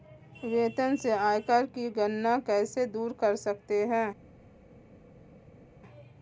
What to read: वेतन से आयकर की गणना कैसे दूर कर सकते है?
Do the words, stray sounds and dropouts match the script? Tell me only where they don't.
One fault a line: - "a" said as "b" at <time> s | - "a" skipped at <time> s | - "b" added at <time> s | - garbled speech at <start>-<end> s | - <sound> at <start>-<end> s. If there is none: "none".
none